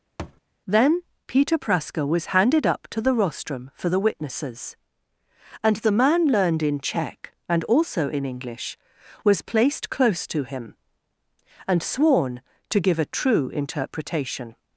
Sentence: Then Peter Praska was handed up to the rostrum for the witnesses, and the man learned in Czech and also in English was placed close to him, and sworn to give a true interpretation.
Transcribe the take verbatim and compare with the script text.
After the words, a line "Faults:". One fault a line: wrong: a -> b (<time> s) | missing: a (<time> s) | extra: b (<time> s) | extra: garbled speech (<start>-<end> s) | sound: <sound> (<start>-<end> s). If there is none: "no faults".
Then Peter Praska was handed up to the rostrum for the witnesses, and the man learned in Czech and also in English was placed close to him, and sworn to give a true interpretation.
Faults:
sound: thud (0.2-0.4 s)